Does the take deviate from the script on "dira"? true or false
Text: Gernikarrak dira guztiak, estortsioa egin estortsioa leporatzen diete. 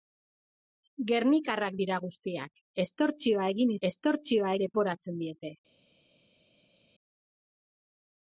false